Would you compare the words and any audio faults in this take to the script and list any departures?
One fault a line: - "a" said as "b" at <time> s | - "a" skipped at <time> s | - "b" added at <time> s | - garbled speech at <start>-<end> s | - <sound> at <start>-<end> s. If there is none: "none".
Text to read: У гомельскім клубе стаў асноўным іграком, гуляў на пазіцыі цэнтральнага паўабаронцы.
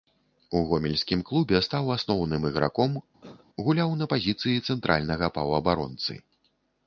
- cough at 3.2-3.5 s